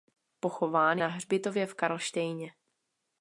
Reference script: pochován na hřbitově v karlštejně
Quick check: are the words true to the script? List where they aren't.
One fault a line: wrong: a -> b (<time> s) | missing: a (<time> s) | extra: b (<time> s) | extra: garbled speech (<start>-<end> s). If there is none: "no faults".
no faults